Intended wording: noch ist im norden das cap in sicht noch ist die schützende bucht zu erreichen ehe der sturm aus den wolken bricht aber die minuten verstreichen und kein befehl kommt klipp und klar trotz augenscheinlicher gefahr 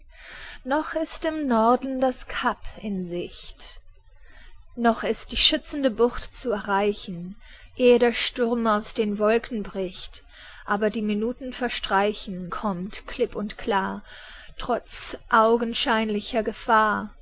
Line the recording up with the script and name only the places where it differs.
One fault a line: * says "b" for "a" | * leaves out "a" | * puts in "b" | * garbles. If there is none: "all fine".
* leaves out "und kein befehl"